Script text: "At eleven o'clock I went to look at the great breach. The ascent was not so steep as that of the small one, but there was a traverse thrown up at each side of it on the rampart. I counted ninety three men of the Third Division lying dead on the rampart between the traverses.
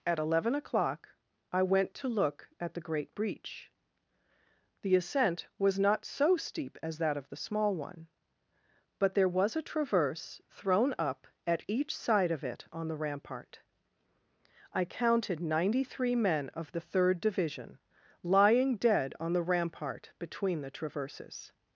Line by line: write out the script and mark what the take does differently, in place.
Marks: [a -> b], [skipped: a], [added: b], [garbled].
"At eleven o'clock I went to look at the great breach. The ascent was not so steep as that of the small one, but there was a traverse thrown up at each side of it on the rampart. I counted ninety three men of the Third Division lying dead on the rampart between the traverses.